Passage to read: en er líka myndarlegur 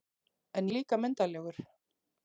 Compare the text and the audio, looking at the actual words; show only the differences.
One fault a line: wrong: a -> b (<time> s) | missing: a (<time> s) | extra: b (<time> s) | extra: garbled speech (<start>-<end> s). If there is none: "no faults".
no faults